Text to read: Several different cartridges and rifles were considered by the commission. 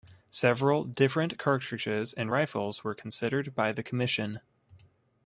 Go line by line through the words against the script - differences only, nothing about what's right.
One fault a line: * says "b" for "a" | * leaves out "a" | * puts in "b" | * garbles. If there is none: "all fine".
all fine